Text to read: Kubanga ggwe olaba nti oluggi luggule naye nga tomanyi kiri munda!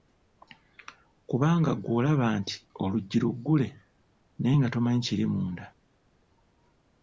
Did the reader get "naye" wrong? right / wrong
right